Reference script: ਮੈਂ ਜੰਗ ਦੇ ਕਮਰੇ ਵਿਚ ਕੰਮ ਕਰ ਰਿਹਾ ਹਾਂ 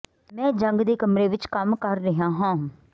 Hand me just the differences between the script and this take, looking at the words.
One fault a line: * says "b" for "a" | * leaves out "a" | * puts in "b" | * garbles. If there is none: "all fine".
all fine